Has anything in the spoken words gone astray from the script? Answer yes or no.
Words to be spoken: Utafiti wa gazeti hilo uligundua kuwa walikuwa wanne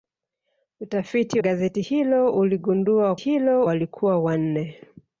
yes